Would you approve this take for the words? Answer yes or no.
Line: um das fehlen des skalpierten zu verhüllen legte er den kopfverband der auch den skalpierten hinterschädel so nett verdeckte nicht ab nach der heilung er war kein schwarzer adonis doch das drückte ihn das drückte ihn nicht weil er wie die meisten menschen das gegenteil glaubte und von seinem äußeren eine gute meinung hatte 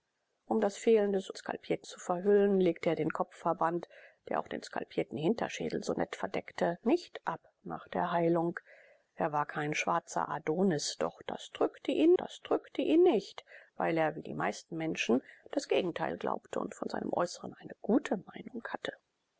yes